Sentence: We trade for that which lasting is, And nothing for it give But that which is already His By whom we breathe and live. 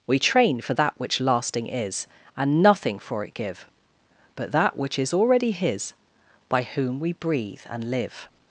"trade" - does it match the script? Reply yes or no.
no